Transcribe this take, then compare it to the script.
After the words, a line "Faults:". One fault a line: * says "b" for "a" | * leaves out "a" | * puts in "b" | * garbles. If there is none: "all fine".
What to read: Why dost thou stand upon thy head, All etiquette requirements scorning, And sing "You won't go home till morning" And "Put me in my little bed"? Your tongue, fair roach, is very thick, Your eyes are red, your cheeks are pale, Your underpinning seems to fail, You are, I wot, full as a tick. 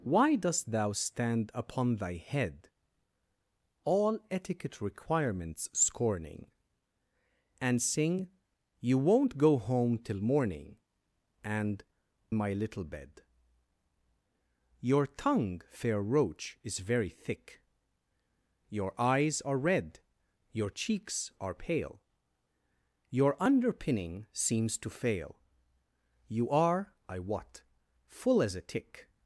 Why dost thou stand upon thy head, All etiquette requirements scorning, And sing "You won't go home till morning" And "My little bed"? Your tongue, fair roach, is very thick, Your eyes are red, your cheeks are pale, Your underpinning seems to fail, You are, I wot, full as a tick.
Faults:
* leaves out "Put me in"